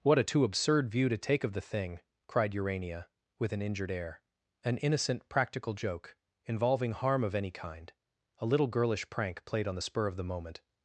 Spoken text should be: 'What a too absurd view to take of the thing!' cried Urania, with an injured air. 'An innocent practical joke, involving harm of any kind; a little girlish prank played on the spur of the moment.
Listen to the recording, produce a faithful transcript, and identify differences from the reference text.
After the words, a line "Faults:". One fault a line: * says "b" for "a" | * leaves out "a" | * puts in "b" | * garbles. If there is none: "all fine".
'What a too absurd view to take of the thing!' cried Urania, with an injured air. 'An innocent practical joke, involving harm of any kind; a little girlish prank played on the spur of the moment.
Faults:
all fine